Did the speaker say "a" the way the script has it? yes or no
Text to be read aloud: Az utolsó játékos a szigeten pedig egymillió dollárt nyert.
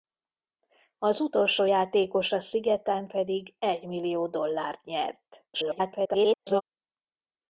yes